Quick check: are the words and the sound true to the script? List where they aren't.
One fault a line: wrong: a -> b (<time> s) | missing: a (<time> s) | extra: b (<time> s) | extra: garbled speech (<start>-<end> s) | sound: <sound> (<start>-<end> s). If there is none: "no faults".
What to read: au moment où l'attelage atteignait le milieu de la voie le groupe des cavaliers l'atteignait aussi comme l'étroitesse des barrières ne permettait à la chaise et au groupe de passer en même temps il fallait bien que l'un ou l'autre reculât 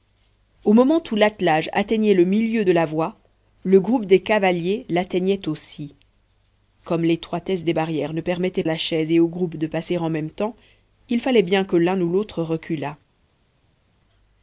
no faults